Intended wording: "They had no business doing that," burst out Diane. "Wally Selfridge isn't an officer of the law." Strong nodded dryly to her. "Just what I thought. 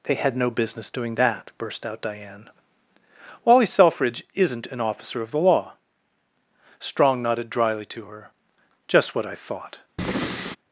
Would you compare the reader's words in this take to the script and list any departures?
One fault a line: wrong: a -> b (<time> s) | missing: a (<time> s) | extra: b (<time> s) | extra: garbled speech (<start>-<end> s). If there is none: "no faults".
no faults